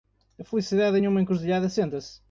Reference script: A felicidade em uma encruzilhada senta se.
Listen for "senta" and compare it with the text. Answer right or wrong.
right